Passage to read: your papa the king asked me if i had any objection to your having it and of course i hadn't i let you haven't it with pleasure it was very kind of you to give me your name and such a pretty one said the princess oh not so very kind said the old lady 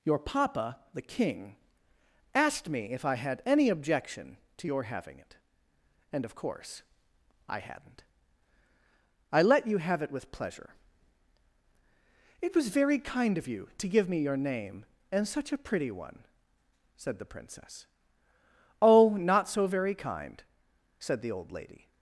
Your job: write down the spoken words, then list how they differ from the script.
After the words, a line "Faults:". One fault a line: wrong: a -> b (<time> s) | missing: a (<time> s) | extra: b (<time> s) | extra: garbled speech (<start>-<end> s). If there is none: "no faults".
your papa the king asked me if i had any objection to your having it and of course i hadn't i let you have it with pleasure it was very kind of you to give me your name and such a pretty one said the princess oh not so very kind said the old lady
Faults:
wrong: haven't -> have (9.8 s)